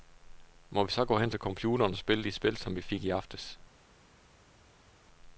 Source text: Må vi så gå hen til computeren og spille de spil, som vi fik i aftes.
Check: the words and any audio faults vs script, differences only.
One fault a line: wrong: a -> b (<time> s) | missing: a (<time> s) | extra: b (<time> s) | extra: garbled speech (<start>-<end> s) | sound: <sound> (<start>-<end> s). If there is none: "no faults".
no faults